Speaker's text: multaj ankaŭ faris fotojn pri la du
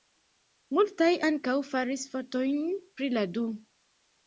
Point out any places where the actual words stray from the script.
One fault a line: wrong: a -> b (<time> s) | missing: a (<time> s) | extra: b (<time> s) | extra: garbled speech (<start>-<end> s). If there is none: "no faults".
no faults